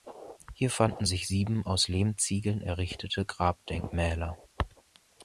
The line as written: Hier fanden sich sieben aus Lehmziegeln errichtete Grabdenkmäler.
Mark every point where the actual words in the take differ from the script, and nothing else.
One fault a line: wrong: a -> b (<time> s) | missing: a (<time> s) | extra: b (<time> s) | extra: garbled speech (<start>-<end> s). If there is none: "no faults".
no faults